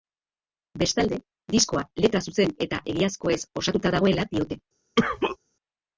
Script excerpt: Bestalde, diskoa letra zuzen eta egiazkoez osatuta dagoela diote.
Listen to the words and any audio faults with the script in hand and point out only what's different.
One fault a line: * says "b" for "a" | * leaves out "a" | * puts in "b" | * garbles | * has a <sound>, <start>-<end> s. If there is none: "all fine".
* has a cough, 5.0-5.4 s